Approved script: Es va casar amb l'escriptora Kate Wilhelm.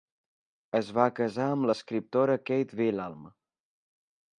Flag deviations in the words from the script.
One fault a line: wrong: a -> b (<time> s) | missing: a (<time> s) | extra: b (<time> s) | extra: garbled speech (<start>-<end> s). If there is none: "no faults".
no faults